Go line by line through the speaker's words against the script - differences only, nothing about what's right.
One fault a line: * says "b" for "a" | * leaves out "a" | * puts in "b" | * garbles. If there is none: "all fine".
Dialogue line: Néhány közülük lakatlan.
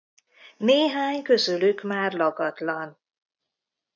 * puts in "már"